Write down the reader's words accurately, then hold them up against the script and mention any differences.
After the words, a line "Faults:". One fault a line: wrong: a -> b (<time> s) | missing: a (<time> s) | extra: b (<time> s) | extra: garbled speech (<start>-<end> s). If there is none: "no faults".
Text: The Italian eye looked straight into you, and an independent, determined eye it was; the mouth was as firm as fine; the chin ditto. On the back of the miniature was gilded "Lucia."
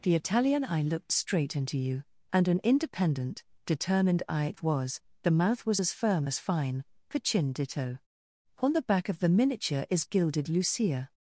The Italian eye looked straight into you, and an independent, determined eye it was; the mouth was as firm as fine; the chin ditto. On the back of the miniature is gilded "Lucia."
Faults:
wrong: was -> is (9.9 s)